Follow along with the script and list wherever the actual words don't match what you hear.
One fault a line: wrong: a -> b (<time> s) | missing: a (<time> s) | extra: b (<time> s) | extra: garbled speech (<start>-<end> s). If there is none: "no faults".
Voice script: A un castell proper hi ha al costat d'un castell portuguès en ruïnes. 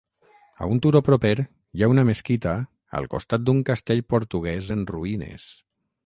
wrong: castell -> turó (0.8 s)
extra: una mesquita (1.9 s)